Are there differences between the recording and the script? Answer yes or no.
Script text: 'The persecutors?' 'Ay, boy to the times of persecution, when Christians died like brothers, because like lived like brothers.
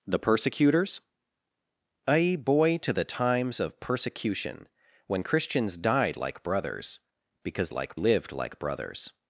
no